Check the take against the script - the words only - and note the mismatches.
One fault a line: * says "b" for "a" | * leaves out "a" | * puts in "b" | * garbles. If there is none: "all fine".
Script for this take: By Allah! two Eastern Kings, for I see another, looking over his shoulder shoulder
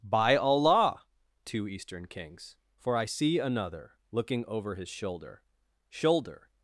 all fine